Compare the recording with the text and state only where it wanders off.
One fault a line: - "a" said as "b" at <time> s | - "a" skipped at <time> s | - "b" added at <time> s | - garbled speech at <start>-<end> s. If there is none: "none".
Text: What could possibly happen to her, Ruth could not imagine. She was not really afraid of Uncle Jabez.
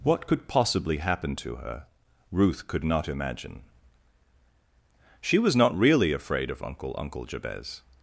- "Uncle" added at 7.0 s